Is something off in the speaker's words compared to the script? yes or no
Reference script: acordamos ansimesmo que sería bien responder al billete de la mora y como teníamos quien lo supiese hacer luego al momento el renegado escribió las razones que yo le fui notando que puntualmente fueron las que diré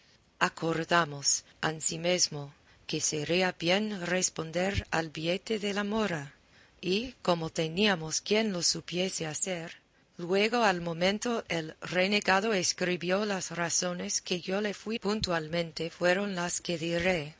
yes